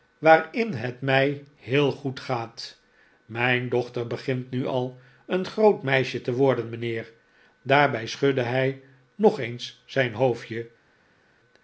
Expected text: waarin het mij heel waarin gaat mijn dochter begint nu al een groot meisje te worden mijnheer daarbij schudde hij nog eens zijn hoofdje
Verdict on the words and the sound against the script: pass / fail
fail